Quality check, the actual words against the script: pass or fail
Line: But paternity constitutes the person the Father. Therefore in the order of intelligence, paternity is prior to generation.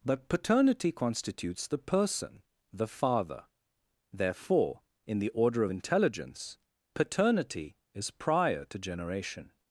pass